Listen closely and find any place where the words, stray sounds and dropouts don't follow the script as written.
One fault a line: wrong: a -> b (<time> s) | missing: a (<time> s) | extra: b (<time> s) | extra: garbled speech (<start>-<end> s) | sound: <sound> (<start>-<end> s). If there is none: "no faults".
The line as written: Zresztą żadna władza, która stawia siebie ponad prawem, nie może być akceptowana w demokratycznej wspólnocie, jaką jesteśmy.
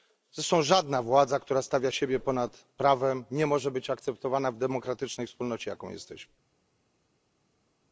no faults